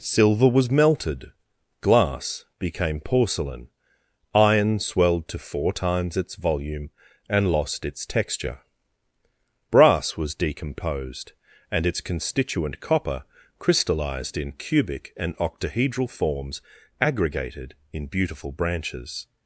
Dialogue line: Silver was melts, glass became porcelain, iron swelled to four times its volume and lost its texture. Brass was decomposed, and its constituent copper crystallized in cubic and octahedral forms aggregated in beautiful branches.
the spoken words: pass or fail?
fail